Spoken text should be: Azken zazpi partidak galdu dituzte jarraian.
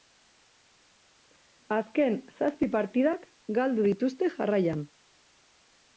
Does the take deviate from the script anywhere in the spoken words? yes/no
no